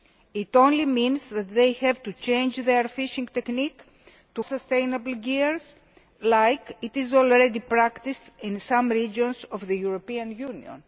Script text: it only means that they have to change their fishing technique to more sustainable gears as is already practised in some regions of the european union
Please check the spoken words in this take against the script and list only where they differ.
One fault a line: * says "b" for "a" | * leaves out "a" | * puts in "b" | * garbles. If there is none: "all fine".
* leaves out "more"